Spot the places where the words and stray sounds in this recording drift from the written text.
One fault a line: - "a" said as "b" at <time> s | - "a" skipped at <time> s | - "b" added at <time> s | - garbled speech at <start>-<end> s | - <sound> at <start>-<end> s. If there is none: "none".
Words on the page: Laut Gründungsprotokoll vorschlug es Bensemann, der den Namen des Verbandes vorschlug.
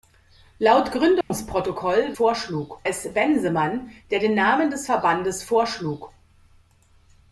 - dropout at 1.2-1.3 s